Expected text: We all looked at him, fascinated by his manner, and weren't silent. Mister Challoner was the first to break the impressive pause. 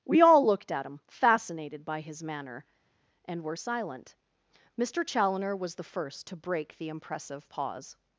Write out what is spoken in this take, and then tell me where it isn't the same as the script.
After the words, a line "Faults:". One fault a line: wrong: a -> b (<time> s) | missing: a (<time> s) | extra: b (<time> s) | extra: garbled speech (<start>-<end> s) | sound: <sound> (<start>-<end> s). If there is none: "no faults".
We all looked at him, fascinated by his manner, and were silent. Mister Challoner was the first to break the impressive pause.
Faults:
wrong: weren't -> were (3.4 s)